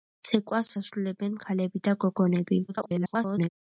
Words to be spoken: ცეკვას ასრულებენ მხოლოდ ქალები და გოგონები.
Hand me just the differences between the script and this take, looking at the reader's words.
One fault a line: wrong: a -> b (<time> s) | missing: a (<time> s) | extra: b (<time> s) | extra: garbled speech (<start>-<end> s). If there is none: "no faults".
missing: მხოლოდ (1.3 s)
extra: garbled speech (2.7-3.5 s)